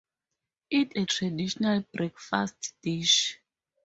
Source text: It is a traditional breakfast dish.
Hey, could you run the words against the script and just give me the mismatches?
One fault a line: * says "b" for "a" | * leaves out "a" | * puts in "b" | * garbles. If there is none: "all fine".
* leaves out "is"